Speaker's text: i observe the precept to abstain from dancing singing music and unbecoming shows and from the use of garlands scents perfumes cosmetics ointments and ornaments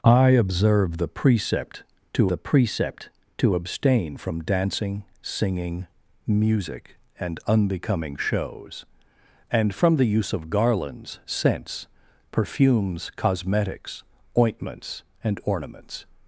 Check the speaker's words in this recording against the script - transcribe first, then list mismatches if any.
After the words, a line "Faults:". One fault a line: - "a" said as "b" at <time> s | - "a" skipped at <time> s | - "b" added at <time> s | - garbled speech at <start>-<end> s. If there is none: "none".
i observe the precept to the precept to abstain from dancing singing music and unbecoming shows and from the use of garlands scents perfumes cosmetics ointments and ornaments
Faults:
- "the precept to" added at 2.3 s